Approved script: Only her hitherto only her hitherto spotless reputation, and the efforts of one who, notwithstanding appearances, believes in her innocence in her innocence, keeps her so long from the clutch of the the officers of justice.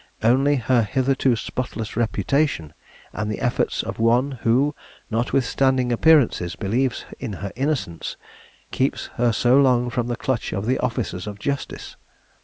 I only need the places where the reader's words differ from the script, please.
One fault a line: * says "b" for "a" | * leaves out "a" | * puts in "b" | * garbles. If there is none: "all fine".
* leaves out "only her hitherto"
* leaves out "in her innocence"
* leaves out "the"